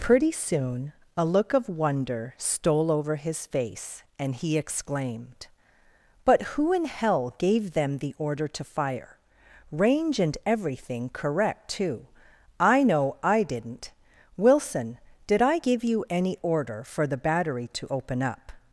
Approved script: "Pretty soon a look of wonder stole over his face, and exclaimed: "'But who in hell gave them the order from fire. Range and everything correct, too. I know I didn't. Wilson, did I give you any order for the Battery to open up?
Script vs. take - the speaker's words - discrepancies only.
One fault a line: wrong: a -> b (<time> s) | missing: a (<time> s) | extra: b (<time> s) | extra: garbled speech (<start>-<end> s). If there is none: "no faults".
extra: he (4.3 s)
wrong: from -> to (8.5 s)